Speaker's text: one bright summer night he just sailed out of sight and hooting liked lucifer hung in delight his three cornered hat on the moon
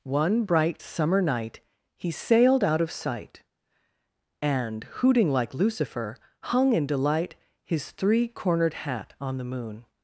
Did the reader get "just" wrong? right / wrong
wrong